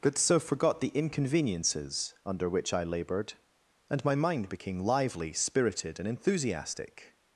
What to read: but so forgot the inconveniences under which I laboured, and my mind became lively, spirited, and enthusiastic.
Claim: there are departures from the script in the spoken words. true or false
false